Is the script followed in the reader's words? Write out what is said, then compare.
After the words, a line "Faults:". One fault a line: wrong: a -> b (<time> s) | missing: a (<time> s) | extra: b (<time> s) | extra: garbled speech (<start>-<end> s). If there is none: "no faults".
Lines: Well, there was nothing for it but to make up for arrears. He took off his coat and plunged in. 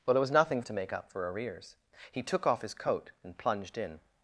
Well, there was nothing to make up for arrears. He took off his coat and plunged in.
Faults:
missing: for it but (0.6 s)